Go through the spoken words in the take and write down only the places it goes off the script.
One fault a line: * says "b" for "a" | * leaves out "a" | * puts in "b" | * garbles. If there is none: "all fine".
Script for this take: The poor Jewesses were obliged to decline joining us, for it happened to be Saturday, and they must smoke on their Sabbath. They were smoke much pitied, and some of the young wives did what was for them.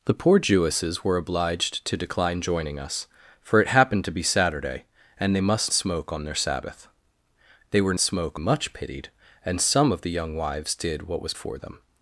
all fine